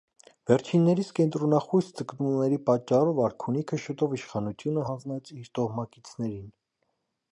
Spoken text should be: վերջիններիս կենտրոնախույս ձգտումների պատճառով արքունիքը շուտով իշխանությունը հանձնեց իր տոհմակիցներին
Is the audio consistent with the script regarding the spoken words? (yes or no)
yes